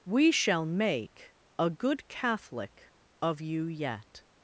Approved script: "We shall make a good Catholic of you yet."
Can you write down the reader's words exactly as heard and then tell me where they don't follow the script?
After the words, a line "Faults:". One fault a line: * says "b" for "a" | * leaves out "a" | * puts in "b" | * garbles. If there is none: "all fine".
"We shall make a good Catholic of you yet."
Faults:
all fine